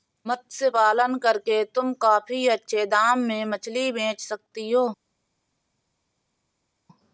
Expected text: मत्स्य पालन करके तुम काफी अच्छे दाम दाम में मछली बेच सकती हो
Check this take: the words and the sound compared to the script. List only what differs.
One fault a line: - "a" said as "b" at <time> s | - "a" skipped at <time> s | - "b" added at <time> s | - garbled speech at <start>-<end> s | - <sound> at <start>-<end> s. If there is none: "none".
- "दाम" skipped at 3.2 s